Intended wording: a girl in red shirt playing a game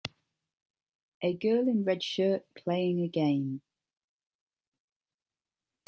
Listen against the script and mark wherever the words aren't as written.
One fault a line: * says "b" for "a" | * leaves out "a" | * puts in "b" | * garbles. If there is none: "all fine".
all fine